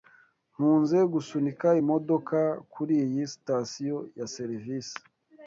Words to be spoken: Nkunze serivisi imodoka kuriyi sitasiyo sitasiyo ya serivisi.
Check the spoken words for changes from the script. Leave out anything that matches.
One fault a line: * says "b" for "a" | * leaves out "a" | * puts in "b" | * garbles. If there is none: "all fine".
* says "gusunika" for "serivisi"
* leaves out "sitasiyo"